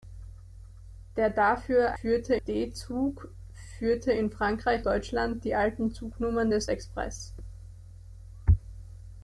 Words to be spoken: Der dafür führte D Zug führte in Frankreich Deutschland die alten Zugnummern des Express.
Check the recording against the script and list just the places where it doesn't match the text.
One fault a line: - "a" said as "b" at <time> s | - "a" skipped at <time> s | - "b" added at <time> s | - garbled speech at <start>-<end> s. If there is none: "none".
none